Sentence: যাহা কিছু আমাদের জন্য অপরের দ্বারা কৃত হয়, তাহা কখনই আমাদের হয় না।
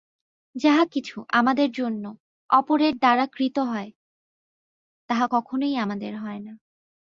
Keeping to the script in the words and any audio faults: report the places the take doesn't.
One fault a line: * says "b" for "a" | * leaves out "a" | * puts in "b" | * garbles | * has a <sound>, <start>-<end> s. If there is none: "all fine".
all fine